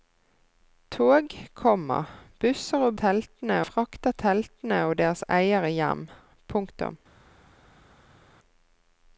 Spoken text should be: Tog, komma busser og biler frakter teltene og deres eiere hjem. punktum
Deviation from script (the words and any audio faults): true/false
true